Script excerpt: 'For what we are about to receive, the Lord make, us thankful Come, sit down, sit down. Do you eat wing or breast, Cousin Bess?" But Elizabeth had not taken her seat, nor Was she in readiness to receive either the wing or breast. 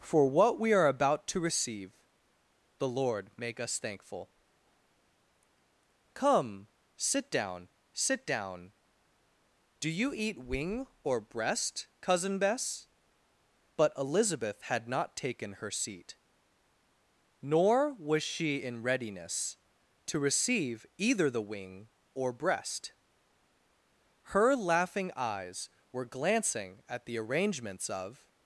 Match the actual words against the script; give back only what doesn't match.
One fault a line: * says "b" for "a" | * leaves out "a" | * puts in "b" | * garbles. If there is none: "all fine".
* puts in "Her Laughing eyes were glancing at the arrangements of"